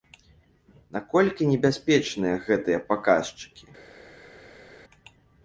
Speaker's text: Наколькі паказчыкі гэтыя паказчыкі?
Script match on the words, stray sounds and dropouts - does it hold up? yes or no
no